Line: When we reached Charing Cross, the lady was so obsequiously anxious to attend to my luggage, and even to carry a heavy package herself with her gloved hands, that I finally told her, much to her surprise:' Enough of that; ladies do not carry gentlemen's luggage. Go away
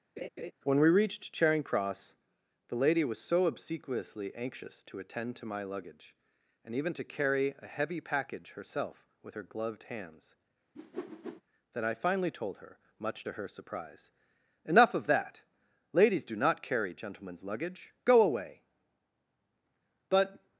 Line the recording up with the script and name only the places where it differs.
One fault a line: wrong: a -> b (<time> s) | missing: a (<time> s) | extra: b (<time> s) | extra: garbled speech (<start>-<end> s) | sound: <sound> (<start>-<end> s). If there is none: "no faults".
sound: laugh (0.2-0.5 s)
sound: whoosh (10.8-11.4 s)
extra: But (20.1 s)